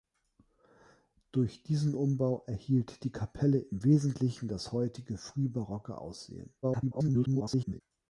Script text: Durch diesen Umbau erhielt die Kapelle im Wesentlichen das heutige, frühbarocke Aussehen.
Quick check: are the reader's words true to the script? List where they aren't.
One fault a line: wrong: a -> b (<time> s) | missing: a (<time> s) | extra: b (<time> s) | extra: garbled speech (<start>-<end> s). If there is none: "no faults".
extra: garbled speech (6.6-7.8 s)